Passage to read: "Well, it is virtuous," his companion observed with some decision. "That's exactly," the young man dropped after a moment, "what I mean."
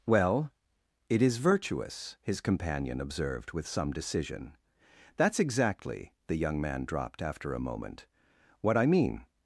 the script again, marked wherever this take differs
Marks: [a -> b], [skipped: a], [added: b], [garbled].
"Well, it is virtuous," his companion observed with some decision. "That's exactly," the young man dropped after a moment, "what I mean."